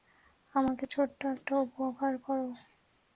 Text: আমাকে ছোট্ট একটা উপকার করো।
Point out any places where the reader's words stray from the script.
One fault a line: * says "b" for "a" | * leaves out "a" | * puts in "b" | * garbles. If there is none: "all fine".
all fine